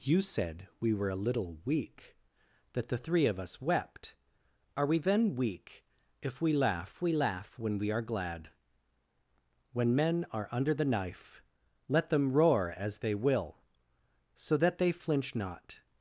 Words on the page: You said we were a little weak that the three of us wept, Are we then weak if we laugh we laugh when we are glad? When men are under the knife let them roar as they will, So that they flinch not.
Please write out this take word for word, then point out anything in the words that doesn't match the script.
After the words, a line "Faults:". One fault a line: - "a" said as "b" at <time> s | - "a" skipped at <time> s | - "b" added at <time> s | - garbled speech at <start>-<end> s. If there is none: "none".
You said we were a little weak that the three of us wept, Are we then weak if we laugh we laugh when we are glad? When men are under the knife let them roar as they will, So that they flinch not.
Faults:
none